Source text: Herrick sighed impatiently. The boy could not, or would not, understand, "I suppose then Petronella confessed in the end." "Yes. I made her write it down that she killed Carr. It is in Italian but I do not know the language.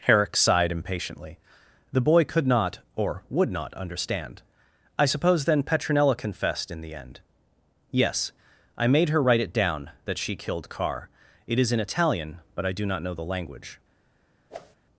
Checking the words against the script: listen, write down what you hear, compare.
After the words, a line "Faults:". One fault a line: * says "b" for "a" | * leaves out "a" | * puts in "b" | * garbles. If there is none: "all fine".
Herrick sighed impatiently. The boy could not, or would not, understand, "I suppose then Petronella confessed in the end." "Yes. I made her write it down that she killed Carr. It is in Italian but I do not know the language.
Faults:
all fine